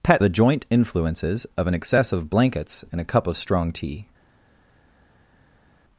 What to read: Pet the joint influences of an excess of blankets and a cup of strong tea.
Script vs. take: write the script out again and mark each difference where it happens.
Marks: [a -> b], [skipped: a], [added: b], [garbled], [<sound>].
Pet the joint influences of an excess of blankets and a cup of strong tea.